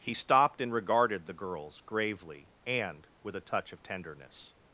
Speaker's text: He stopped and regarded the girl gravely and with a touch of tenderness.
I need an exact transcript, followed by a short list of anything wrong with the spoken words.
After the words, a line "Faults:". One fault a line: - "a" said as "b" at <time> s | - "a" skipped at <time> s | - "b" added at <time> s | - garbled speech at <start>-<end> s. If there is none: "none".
He stopped and regarded the girls gravely and with a touch of tenderness.
Faults:
- "girl" said as "girls" at 1.3 s